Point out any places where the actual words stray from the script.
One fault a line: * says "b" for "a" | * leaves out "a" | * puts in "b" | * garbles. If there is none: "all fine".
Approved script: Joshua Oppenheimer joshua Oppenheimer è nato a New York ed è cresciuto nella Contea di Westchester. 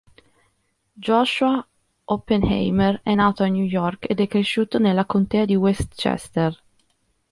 * leaves out "joshua Oppenheimer"